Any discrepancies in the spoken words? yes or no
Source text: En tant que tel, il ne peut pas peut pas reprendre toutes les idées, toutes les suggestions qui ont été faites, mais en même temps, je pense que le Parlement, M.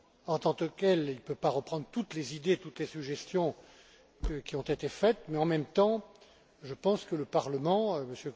yes